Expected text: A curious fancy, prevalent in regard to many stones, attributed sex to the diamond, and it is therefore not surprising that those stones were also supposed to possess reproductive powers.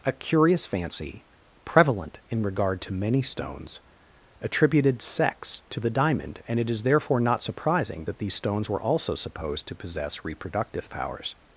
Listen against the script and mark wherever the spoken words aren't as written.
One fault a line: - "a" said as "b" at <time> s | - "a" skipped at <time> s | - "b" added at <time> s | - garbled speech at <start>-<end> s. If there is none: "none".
- "those" said as "these" at 8.2 s